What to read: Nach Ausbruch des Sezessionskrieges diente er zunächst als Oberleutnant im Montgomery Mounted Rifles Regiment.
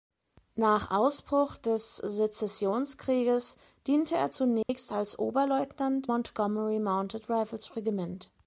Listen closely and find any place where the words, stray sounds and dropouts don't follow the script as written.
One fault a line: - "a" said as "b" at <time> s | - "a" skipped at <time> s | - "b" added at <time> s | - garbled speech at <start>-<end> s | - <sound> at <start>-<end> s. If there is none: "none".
- dropout at 4.6-4.7 s
- "im" skipped at 6.1 s